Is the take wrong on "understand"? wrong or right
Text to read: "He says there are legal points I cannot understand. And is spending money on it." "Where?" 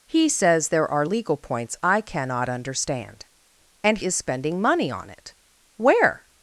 right